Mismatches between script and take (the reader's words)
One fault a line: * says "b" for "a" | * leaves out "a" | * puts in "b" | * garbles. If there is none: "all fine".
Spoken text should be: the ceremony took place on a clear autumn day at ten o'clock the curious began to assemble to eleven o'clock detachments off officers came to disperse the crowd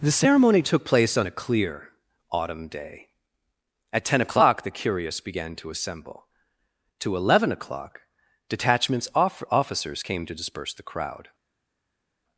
all fine